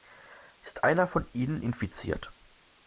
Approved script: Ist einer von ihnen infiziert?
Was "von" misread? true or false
false